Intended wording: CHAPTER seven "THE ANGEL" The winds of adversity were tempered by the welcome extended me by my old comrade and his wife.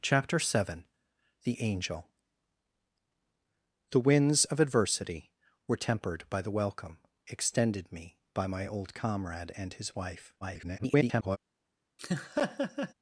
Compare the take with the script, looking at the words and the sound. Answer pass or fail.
fail